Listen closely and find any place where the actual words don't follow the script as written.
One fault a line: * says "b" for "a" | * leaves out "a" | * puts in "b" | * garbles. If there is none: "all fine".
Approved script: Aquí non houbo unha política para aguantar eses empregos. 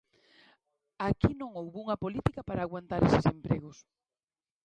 all fine